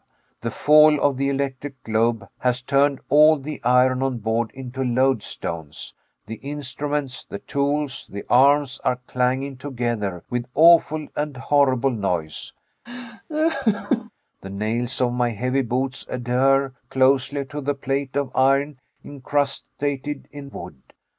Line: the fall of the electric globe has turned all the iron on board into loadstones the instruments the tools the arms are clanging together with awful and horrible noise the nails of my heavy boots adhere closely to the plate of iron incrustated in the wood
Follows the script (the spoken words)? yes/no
no